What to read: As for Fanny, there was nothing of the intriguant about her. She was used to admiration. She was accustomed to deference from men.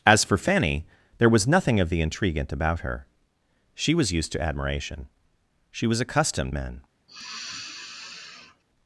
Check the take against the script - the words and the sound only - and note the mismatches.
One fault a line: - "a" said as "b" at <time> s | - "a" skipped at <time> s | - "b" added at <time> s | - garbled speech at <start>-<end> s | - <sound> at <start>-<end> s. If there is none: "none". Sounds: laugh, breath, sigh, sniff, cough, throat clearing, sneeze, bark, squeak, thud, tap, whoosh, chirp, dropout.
- "to deference from" skipped at 6.5 s
- sigh at 7.1-8.6 s